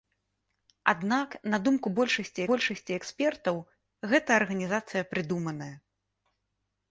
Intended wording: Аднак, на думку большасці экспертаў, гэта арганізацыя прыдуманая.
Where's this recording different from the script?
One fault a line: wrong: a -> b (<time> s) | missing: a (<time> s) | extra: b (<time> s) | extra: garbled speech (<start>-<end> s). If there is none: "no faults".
extra: большасці (2.5 s)